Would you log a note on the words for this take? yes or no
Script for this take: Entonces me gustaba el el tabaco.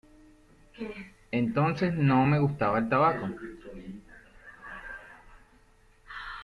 yes